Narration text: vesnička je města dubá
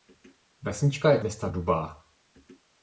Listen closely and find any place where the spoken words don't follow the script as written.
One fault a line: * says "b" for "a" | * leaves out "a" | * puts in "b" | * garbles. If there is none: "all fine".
all fine